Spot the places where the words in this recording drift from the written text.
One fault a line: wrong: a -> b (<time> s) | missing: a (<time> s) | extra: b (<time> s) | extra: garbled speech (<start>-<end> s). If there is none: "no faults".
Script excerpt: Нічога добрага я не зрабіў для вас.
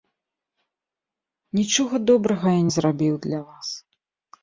no faults